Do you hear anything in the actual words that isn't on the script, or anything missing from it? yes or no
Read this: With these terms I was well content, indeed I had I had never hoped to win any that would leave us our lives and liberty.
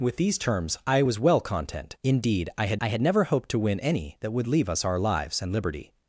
no